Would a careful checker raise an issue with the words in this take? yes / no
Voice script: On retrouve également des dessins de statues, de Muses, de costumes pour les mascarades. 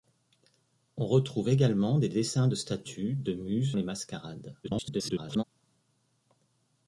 yes